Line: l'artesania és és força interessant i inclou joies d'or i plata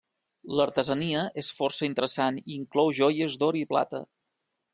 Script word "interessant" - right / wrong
right